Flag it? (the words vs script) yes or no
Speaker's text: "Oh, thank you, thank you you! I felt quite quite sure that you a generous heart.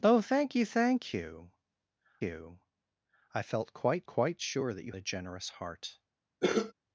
no